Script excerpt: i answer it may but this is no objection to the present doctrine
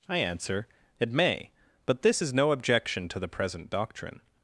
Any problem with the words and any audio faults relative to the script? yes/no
no